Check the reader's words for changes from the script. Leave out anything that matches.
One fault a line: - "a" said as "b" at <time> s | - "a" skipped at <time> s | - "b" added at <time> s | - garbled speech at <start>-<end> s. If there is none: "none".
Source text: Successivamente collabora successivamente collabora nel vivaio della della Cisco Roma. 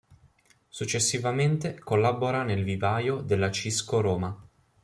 - "successivamente collabora" skipped at 2.4 s
- "della" skipped at 3.5 s